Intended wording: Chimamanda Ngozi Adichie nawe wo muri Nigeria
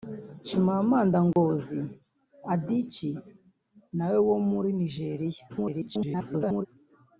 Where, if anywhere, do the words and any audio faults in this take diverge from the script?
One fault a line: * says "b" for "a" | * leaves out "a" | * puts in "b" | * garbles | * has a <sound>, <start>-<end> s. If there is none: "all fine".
* has a dropout, 1.3-1.4 s
* garbles